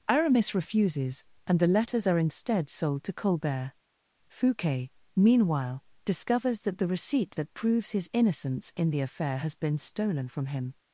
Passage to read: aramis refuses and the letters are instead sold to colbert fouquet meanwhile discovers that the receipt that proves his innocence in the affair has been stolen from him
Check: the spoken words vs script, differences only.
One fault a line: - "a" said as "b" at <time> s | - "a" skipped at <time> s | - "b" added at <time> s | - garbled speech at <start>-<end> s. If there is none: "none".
none